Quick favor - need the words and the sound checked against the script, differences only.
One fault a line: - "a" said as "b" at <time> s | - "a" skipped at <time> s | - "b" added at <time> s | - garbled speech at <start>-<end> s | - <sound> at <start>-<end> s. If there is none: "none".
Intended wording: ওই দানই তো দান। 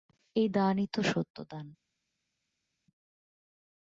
- "ওই" said as "এই" at 0.3 s
- "সত্য" added at 1.0 s